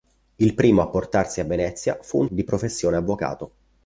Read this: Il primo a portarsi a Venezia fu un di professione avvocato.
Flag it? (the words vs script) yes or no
no